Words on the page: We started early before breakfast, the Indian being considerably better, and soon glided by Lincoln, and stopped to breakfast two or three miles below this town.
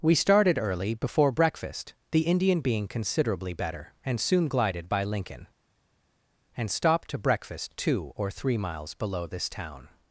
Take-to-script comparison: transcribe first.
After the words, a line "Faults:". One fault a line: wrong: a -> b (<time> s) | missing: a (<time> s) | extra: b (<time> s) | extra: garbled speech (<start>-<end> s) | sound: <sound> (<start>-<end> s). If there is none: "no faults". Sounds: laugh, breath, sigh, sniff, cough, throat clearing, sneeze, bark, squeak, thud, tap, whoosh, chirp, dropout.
We started early before breakfast, the Indian being considerably better, and soon glided by Lincoln, and stopped to breakfast two or three miles below this town.
Faults:
no faults